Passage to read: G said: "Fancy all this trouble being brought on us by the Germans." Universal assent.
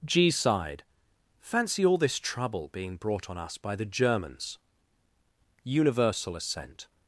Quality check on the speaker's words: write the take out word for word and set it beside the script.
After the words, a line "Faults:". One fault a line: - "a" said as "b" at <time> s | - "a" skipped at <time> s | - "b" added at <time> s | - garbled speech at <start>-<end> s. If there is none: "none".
G sighed: "Fancy all this trouble being brought on us by the Germans." Universal assent.
Faults:
- "said" said as "sighed" at 0.3 s